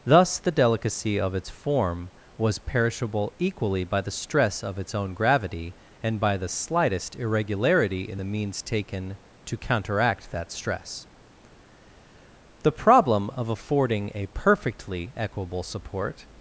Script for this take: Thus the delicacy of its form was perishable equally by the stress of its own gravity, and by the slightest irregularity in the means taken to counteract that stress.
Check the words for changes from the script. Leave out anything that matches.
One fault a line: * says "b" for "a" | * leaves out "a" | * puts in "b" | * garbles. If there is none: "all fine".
* puts in "The problem of affording a perfectly equable support"